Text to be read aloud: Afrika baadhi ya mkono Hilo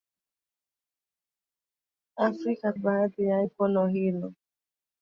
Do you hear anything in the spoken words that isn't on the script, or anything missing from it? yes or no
no